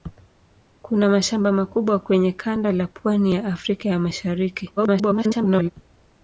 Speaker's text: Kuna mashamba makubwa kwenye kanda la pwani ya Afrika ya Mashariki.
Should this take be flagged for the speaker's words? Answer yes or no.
yes